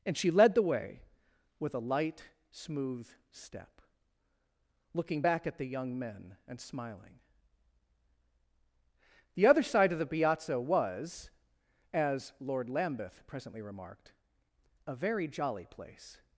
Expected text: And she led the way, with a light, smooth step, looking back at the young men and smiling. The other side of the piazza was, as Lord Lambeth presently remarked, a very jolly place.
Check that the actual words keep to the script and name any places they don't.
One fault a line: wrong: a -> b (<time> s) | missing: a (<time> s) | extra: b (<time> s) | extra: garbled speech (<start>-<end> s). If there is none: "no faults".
no faults